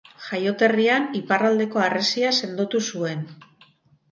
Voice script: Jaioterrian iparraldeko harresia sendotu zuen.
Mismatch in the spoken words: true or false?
false